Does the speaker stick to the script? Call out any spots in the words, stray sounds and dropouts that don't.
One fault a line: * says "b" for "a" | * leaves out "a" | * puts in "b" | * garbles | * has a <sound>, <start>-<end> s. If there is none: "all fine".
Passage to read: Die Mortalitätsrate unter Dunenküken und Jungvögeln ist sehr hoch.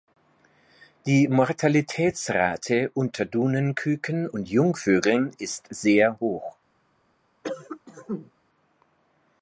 * has a cough, 7.4-8.3 s